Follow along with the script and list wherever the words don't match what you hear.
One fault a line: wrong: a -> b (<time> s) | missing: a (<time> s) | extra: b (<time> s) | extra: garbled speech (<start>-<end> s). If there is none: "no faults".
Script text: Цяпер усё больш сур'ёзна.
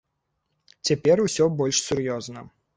no faults